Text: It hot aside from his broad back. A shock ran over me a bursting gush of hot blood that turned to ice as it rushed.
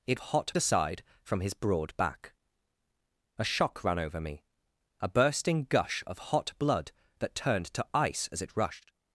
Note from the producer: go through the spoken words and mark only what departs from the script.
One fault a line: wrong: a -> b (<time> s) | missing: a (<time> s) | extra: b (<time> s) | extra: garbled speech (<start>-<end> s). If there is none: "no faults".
no faults